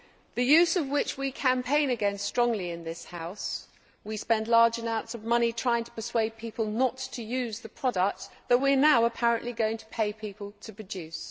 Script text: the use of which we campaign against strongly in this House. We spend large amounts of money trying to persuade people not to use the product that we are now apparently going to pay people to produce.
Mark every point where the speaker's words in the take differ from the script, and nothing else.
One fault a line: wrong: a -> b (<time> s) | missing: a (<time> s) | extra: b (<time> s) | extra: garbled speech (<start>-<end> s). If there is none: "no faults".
no faults